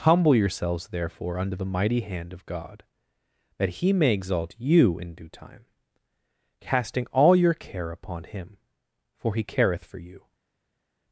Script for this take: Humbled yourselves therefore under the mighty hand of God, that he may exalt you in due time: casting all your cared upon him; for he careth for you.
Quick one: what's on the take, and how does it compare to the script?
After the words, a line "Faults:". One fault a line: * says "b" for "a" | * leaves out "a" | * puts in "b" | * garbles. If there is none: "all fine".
Humble yourselves therefore under the mighty hand of God, that he may exalt you in due time: casting all your care upon him; for he careth for you.
Faults:
* says "Humble" for "Humbled"
* says "care" for "cared"